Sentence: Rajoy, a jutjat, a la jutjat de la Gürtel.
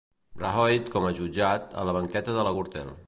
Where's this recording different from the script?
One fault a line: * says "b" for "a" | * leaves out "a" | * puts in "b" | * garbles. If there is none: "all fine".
* puts in "com"
* says "banqueta" for "jutjat"